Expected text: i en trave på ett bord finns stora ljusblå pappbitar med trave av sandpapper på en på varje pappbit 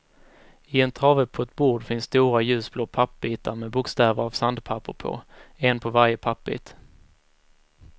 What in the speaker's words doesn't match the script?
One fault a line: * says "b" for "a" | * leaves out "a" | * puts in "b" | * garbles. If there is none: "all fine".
* says "bokstäver" for "trave"